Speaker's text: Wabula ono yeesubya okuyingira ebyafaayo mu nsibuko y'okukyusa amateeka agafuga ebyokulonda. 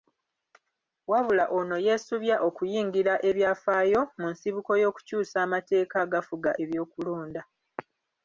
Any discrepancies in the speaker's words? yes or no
no